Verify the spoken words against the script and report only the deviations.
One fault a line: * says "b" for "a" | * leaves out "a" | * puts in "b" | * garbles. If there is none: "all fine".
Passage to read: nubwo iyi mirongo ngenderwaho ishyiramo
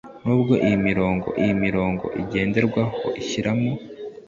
* puts in "iyi mirongo"